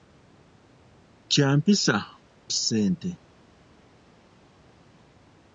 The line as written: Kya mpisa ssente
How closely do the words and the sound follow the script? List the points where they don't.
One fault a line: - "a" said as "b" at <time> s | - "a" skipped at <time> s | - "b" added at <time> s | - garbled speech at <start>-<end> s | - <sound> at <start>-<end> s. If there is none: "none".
none